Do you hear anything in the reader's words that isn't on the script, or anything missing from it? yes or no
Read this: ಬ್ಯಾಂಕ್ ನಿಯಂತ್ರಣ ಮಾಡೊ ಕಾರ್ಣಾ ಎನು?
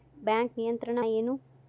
yes